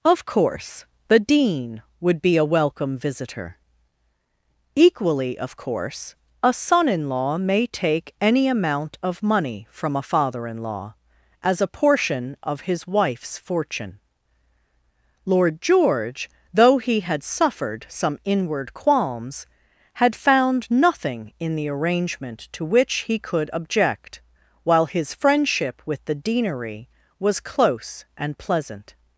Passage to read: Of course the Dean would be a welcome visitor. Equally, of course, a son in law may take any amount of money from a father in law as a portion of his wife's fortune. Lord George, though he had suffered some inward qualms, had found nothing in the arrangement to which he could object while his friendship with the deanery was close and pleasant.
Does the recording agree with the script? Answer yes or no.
yes